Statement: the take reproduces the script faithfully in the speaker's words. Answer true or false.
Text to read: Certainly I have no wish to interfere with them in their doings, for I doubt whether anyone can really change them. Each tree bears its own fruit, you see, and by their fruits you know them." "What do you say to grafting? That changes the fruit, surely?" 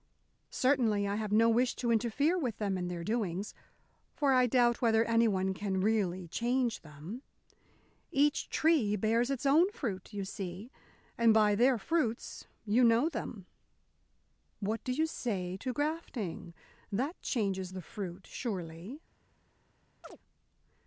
true